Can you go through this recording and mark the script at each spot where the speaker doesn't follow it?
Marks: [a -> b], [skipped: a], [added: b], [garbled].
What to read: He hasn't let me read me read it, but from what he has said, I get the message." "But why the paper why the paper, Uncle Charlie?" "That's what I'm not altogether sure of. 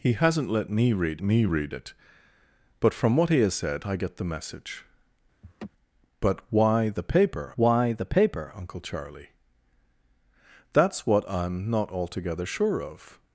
He hasn't let me read me read it, but from what he has said, I get the message." "But why the paper why the paper, Uncle Charlie?" "That's what I'm not altogether sure of.